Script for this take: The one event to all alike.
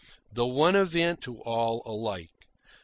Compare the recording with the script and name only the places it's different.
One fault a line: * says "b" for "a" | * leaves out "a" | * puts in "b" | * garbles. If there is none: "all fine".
all fine